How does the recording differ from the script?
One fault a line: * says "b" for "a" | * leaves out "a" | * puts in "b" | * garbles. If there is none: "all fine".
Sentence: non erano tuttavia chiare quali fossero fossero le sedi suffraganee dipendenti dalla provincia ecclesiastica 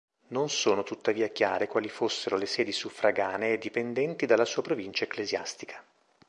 * says "sono" for "erano"
* leaves out "fossero"
* puts in "sua"